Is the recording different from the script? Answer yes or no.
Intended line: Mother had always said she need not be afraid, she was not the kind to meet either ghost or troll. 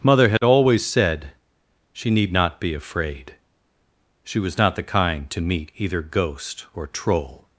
no